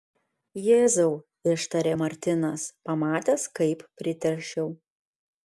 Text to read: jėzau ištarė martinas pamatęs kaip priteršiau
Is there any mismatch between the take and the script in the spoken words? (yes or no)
no